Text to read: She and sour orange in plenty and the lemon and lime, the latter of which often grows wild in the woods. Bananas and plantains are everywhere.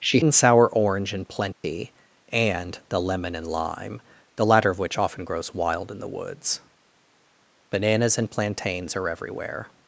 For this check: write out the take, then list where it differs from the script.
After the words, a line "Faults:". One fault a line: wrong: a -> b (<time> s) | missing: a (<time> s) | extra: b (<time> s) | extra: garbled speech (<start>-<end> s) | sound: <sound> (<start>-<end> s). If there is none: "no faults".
She and sour orange in plenty and the lemon and lime, the latter of which often grows wild in the woods. Bananas and plantains are everywhere.
Faults:
sound: dropout (1.5-1.6 s)